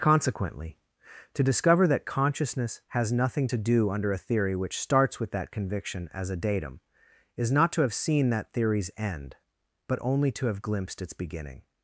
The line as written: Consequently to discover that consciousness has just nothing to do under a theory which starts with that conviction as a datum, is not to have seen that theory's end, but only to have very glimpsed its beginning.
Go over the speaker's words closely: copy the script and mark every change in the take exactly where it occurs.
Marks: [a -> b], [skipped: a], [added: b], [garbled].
Consequently to discover that consciousness has [skipped: just] nothing to do under a theory which starts with that conviction as a datum, is not to have seen that theory's end, but only to have [skipped: very] glimpsed its beginning.